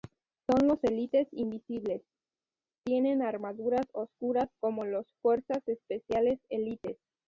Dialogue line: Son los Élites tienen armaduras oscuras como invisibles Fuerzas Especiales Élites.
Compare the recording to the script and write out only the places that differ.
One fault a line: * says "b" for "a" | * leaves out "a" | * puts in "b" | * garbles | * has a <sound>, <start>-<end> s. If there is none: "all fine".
* puts in "invisibles"
* says "los" for "invisibles"